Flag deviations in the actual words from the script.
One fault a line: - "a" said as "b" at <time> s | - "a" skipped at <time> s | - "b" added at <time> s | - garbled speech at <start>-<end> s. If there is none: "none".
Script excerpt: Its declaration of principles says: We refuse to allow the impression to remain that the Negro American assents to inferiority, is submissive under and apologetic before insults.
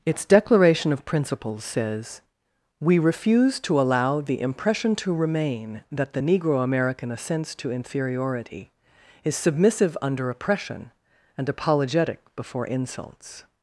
- "oppression" added at 10.3 s